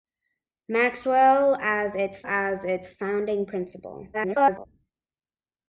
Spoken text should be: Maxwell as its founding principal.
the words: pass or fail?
fail